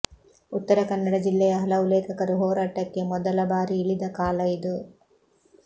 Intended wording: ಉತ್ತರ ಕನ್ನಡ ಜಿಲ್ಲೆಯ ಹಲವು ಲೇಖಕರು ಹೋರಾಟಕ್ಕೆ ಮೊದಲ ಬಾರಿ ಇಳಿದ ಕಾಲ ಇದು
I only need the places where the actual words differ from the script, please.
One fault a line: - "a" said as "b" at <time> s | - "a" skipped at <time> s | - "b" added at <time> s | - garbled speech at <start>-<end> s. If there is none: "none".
none